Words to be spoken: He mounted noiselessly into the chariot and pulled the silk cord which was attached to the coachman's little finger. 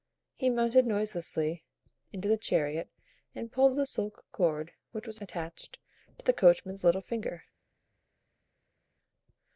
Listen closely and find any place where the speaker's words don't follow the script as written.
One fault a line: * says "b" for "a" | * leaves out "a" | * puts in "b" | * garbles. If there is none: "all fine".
all fine